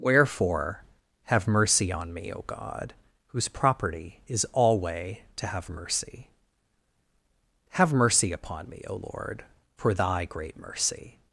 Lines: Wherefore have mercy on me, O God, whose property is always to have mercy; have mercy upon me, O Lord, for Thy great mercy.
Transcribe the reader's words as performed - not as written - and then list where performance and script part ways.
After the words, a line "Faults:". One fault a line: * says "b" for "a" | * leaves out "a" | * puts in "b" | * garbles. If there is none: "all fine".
Wherefore have mercy on me, O God, whose property is alway to have mercy; have mercy upon me, O Lord, for Thy great mercy.
Faults:
* says "alway" for "always"